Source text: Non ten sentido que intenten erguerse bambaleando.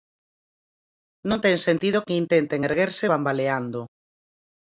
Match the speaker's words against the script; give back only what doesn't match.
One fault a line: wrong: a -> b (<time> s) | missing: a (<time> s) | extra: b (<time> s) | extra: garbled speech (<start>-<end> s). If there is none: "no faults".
no faults